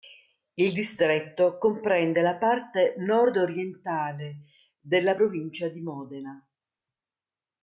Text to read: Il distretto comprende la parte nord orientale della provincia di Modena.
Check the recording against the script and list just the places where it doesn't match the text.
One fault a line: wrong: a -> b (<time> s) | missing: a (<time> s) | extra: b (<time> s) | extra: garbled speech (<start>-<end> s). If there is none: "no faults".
no faults